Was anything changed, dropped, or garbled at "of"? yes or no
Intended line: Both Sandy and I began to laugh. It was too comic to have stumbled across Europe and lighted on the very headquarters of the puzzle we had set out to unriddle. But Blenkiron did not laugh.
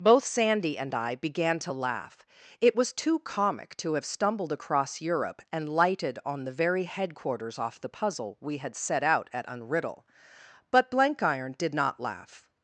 yes